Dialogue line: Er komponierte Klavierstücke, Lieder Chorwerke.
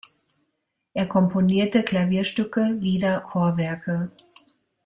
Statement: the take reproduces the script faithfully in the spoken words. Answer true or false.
true